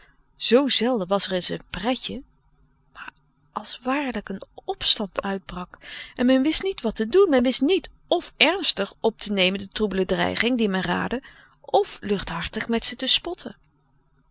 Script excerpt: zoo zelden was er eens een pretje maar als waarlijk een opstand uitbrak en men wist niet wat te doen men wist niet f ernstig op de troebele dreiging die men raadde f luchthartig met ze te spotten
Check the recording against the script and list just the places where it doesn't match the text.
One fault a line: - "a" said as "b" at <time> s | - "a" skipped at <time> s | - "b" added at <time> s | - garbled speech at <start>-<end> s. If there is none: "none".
- "te nemen" added at 9.2 s